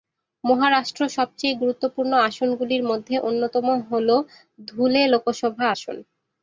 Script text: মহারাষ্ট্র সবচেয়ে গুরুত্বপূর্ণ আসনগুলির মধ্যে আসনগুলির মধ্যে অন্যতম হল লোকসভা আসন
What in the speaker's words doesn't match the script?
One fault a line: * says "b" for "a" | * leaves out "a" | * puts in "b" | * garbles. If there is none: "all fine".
* leaves out "আসনগুলির মধ্যে"
* puts in "ধুলে"